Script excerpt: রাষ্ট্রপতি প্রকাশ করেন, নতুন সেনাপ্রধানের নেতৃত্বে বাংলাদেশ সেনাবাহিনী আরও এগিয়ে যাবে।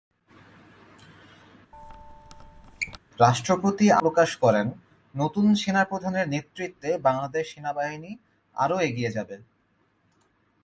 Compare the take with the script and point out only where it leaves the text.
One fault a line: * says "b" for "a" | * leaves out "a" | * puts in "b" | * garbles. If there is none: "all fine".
all fine